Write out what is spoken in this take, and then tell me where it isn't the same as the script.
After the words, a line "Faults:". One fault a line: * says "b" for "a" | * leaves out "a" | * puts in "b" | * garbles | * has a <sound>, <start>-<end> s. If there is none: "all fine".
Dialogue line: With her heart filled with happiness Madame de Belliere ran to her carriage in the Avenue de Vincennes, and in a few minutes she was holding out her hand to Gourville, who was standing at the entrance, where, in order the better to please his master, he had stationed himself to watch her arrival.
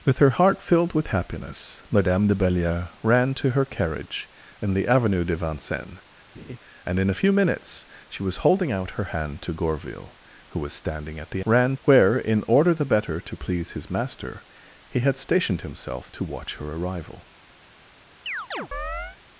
With her heart filled with happiness Madame de Belliere ran to her carriage in the Avenue de Vincennes, and in a few minutes she was holding out her hand to Gourville, who was standing at the ran, where, in order the better to please his master, he had stationed himself to watch her arrival.
Faults:
* has a laugh, 6.3-6.6 s
* says "ran" for "entrance"
* has a chirp, 18.3-19.2 s